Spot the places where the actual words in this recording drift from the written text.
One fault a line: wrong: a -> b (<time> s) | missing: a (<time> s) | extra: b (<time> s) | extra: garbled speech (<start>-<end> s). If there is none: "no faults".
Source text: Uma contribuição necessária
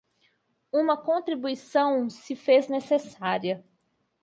extra: se fez (2.1 s)